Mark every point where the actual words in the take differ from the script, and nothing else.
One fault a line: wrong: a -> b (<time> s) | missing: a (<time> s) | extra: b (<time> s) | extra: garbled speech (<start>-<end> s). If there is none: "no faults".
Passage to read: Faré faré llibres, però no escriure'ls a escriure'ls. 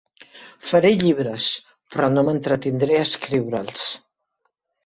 missing: faré (0.9 s)
wrong: escriure'ls -> m'entretindré (2.3 s)